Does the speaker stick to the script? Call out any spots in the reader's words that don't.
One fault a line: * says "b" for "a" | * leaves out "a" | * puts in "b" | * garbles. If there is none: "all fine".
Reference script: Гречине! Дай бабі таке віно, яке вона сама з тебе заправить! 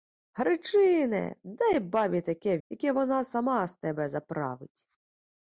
* leaves out "віно"